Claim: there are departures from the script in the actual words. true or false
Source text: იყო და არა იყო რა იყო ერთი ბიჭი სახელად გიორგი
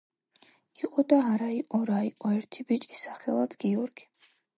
false